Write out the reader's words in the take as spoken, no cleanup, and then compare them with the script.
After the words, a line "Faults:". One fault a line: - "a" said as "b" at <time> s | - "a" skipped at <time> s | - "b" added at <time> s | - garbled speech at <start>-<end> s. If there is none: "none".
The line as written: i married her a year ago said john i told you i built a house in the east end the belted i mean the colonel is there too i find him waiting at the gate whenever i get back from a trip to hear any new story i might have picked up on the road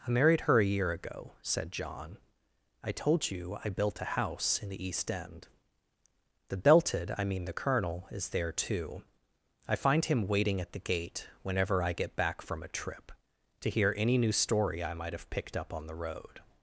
i married her a year ago said john i told you i built a house in the east end the belted i mean the colonel is there too i find him waiting at the gate whenever i get back from a trip to hear any new story i might have picked up on the road
Faults:
none